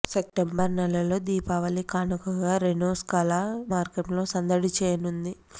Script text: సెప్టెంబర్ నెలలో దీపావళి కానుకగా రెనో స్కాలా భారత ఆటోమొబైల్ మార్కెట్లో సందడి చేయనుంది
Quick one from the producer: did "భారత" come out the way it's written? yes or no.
no